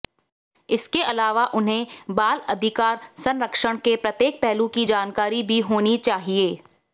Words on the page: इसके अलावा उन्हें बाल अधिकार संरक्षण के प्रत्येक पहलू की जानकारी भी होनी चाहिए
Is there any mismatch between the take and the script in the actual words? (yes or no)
no